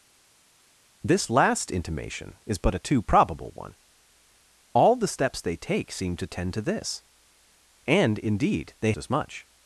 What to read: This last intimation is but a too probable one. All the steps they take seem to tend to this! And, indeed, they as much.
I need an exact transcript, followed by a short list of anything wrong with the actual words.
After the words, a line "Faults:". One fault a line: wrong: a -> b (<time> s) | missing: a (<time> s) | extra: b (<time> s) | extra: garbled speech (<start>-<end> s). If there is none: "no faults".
This last intimation is but a too probable one. All the steps they take seem to tend to this! And, indeed, they as much.
Faults:
no faults